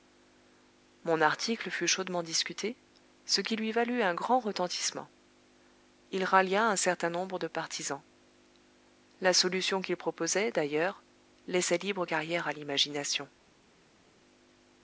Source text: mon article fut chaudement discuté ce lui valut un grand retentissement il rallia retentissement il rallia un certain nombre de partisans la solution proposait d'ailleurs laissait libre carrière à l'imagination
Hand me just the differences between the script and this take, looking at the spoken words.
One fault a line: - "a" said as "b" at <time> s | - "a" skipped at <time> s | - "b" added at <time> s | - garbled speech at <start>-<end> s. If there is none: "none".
- "qui" added at 3.4 s
- "retentissement il rallia" skipped at 6.7 s
- "qu'il" added at 9.8 s